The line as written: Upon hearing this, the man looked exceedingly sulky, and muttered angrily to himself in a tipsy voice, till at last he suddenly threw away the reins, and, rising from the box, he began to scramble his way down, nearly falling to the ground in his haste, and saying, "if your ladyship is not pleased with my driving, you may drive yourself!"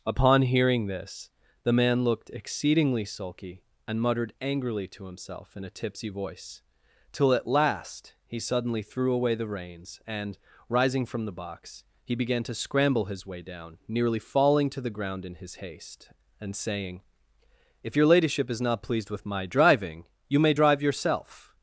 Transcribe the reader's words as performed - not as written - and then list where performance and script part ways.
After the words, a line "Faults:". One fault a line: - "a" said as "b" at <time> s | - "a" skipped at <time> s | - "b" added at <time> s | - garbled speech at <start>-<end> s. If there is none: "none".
Upon hearing this, the man looked exceedingly sulky, and muttered angrily to himself in a tipsy voice, till at last he suddenly threw away the reins, and, rising from the box, he began to scramble his way down, nearly falling to the ground in his haste, and saying, "if your ladyship is not pleased with my driving, you may drive yourself!"
Faults:
none